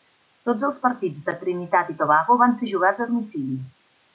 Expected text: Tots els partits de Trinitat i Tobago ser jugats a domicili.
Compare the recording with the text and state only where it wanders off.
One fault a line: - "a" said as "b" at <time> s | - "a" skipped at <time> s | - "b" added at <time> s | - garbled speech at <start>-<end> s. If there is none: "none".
- "van" added at 2.4 s